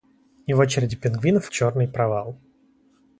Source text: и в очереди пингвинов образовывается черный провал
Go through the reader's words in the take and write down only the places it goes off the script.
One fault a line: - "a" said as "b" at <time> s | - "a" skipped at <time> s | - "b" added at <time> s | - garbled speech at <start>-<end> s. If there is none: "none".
- "образовывается" skipped at 1.5 s